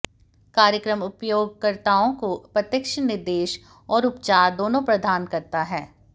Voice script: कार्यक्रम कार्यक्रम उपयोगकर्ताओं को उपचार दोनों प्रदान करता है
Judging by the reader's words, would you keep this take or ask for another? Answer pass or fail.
fail